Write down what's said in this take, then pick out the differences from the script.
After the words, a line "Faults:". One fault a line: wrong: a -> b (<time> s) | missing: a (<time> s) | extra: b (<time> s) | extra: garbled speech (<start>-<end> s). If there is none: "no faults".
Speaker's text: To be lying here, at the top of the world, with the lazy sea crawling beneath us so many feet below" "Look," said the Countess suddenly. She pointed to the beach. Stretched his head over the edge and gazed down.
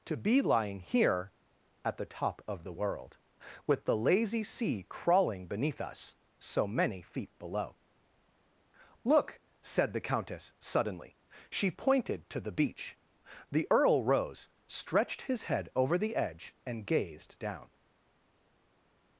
To be lying here, at the top of the world, with the lazy sea crawling beneath us so many feet below" "Look," said the Countess suddenly. She pointed to the beach. The Earl rose, stretched his head over the edge and gazed down.
Faults:
extra: The Earl rose (13.5 s)